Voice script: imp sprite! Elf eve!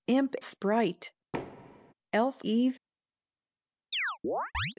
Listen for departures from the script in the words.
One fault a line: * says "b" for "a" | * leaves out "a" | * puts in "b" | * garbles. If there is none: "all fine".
all fine